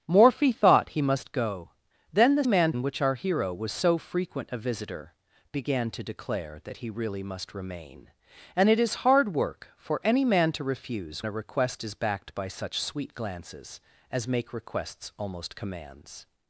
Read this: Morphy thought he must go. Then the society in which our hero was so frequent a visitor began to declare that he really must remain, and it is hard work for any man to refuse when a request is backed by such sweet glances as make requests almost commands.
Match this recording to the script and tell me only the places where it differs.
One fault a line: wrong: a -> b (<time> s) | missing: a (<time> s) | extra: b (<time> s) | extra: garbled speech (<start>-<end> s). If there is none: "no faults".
wrong: society -> man (2.4 s)
missing: when (11.2 s)